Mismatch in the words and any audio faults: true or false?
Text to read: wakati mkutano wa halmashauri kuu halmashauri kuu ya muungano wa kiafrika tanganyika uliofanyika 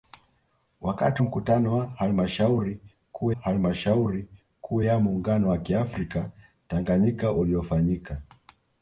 false